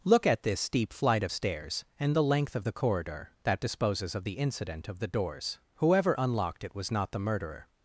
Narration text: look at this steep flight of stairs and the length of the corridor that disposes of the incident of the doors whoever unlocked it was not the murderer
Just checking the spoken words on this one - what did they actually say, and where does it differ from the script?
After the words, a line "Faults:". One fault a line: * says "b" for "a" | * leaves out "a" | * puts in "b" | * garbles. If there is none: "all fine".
look at this steep flight of stairs and the length of the corridor that disposes of the incident of the doors whoever unlocked it was not the murderer
Faults:
all fine